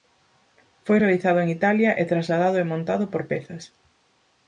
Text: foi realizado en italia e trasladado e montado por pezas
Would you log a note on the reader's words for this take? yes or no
no